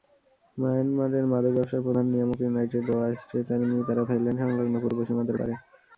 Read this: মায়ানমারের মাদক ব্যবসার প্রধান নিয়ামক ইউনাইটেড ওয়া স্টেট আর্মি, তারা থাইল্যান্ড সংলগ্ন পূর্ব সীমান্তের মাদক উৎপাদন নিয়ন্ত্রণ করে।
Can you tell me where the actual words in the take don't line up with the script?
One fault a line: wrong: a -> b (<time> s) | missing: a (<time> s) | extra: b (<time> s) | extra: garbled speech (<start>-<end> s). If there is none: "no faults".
missing: মাদক উৎপাদন নিয়ন্ত্রণ (5.4 s)